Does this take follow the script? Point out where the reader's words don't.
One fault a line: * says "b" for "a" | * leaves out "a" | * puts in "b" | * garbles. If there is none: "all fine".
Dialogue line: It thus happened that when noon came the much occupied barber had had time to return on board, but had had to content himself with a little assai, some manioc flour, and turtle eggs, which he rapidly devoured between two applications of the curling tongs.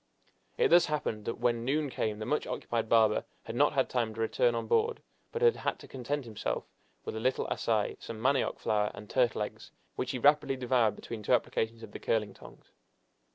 * puts in "not"